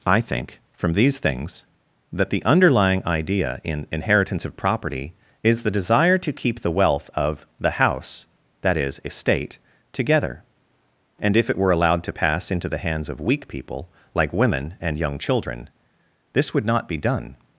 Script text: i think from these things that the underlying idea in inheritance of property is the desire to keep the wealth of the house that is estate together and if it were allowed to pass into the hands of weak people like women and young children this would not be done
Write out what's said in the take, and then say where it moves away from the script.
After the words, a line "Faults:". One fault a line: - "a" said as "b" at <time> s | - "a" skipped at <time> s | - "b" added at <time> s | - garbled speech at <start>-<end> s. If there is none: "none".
i think from these things that the underlying idea in inheritance of property is the desire to keep the wealth of the house that is estate together and if it were allowed to pass into the hands of weak people like women and young children this would not be done
Faults:
none